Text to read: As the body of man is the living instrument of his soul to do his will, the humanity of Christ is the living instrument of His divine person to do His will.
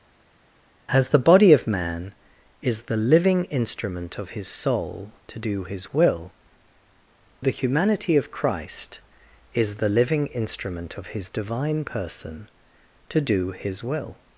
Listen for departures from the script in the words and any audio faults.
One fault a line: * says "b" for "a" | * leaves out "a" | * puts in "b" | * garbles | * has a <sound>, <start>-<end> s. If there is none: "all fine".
all fine